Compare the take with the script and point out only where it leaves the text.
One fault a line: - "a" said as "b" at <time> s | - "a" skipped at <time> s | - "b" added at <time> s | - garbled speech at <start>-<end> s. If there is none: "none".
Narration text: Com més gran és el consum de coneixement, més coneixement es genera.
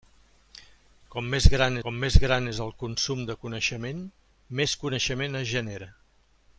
- "com més gran" added at 1.8 s